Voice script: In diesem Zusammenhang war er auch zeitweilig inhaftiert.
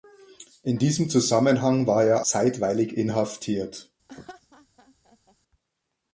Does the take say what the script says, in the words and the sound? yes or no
no